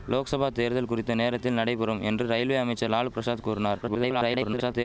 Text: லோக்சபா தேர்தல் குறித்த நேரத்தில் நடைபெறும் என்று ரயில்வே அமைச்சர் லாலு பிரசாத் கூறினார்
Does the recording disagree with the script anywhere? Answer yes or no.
yes